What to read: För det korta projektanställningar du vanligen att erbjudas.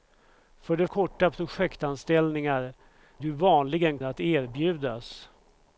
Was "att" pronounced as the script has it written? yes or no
yes